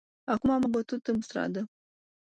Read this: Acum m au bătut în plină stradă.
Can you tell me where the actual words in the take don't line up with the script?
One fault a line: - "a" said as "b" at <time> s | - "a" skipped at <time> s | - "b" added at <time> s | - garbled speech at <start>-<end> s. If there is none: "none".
- "au" skipped at 0.7 s
- "plină" skipped at 1.2 s